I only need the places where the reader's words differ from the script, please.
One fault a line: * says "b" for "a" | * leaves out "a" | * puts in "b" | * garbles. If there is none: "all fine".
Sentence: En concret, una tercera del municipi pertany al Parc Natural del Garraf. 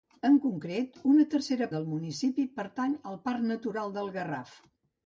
all fine